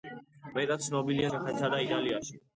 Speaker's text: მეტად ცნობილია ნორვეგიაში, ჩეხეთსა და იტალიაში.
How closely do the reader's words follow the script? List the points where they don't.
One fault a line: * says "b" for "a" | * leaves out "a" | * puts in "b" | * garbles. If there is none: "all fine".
* leaves out "ნორვეგიაში"